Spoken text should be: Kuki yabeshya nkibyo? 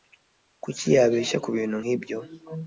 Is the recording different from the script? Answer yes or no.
yes